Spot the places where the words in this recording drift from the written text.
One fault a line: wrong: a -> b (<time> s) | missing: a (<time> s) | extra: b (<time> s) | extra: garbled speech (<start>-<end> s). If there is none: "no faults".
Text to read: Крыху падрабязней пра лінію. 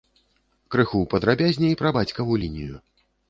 extra: бацькаву (2.0 s)